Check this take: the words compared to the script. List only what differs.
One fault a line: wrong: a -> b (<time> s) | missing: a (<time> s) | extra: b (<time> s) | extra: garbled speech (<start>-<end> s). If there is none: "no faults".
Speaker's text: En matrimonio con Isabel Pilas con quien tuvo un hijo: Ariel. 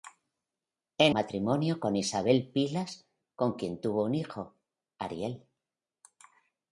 no faults